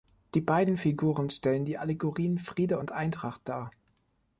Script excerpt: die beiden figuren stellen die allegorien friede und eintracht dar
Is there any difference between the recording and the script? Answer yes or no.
no